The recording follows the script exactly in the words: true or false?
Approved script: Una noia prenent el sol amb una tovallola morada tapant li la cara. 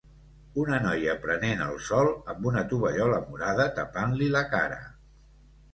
true